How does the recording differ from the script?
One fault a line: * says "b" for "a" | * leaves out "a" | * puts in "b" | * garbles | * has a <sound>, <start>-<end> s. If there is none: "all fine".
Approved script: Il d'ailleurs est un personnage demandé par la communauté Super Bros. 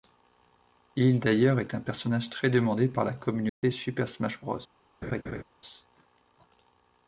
* puts in "très"
* has a dropout, 3.5-3.6 s
* puts in "Smash"
* has a laugh, 5.0-5.4 s